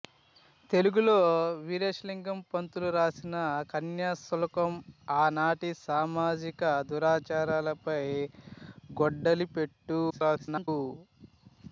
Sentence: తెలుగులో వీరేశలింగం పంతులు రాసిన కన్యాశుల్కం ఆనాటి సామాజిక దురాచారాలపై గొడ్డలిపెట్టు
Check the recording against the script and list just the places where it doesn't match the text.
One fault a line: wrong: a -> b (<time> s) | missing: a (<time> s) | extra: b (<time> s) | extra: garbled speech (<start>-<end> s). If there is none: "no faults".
extra: garbled speech (10.1-10.7 s)